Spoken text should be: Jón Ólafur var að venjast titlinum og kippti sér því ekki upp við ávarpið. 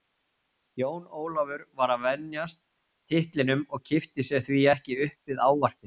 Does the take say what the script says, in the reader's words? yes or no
yes